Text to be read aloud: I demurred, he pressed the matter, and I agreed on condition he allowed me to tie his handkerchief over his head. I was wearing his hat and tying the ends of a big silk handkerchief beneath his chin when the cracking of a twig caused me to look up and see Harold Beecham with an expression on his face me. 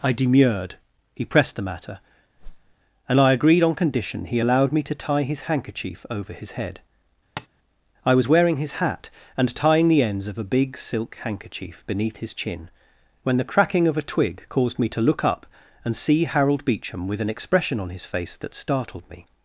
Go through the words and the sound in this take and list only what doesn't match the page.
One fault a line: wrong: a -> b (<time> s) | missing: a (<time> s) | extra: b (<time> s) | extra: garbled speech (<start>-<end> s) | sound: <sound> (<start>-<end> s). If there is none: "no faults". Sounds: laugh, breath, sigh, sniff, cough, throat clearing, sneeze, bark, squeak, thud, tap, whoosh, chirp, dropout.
sound: whoosh (2.4-2.7 s)
sound: tap (7.4-7.5 s)
extra: that startled (18.4 s)